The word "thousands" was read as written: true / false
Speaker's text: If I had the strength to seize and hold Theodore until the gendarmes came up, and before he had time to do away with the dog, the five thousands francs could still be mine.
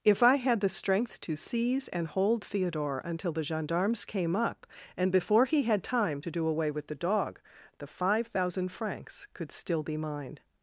false